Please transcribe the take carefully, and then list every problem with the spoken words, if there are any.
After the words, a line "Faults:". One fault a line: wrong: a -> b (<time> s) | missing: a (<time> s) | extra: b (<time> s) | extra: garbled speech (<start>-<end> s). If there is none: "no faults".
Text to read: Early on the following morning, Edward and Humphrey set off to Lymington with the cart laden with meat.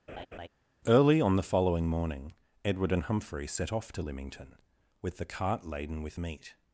Early on the following morning, Edward and Humphrey set off to Lymington with the cart laden with meat.
Faults:
no faults